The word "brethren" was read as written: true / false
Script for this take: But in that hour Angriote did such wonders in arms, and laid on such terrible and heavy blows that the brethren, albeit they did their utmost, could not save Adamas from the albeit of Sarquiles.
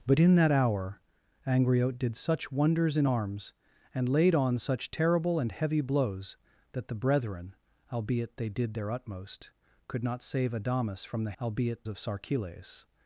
true